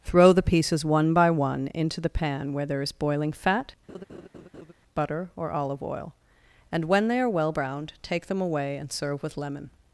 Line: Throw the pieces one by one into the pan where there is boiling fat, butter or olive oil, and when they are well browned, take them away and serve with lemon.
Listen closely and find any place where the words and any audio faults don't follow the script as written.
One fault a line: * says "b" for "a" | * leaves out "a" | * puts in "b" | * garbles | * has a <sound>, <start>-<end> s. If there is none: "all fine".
* has a laugh, 3.9-4.7 s